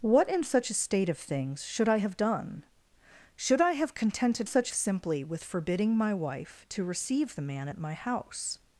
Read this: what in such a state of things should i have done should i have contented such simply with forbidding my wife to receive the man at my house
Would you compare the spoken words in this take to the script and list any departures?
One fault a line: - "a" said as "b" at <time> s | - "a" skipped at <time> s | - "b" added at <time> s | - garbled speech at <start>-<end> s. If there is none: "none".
none